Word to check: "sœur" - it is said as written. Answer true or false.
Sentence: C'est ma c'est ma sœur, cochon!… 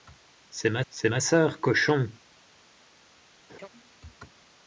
true